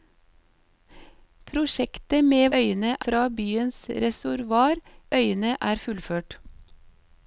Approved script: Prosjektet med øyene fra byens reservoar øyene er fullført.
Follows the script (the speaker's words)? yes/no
yes